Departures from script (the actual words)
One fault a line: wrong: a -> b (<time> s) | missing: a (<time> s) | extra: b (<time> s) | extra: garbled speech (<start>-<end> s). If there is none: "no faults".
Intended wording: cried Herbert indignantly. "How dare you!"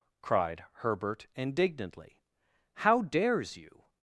wrong: dare -> dares (3.0 s)